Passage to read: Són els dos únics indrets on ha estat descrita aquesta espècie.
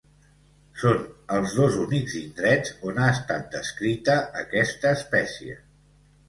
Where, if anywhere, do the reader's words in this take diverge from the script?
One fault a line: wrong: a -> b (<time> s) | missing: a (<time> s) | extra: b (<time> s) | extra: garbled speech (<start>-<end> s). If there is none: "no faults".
no faults